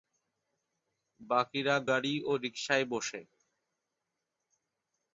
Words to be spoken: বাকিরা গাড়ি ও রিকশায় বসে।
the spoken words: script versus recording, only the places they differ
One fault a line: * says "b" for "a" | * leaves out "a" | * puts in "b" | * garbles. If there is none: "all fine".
all fine